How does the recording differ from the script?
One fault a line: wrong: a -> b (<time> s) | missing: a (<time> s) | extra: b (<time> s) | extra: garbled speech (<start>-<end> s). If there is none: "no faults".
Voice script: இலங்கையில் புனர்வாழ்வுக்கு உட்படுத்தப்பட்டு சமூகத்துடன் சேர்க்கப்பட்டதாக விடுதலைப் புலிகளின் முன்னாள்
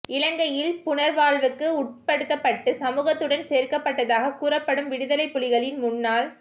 extra: கூறப்படும் (4.4 s)